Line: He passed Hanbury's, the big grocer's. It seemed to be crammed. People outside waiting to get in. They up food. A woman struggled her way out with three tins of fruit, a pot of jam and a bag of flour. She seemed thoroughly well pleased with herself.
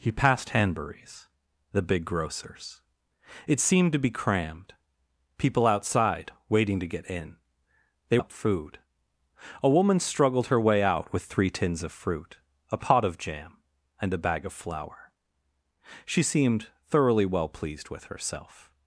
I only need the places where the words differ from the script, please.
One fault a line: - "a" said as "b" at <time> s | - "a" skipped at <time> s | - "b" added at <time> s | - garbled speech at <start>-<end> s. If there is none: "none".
none